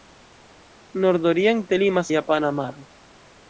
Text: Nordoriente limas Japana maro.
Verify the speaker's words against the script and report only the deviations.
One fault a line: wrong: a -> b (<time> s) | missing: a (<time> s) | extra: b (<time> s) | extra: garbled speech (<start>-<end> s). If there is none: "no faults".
no faults